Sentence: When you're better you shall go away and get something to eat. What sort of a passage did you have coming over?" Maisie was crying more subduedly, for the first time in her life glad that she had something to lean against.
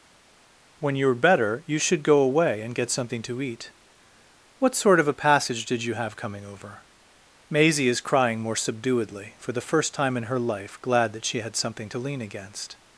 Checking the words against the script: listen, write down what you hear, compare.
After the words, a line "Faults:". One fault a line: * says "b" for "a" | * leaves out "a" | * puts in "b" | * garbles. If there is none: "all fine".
When you're better you should go away and get something to eat. What sort of a passage did you have coming over?" Maisie is crying more subduedly, for the first time in her life glad that she had something to lean against.
Faults:
* says "should" for "shall"
* says "is" for "was"